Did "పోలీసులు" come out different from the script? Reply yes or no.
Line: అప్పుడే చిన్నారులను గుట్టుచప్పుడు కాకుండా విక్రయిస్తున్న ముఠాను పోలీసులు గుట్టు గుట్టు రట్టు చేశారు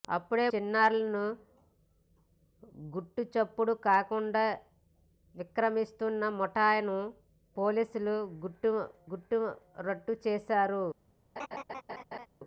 no